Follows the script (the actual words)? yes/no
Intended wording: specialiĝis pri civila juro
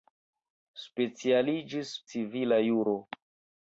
no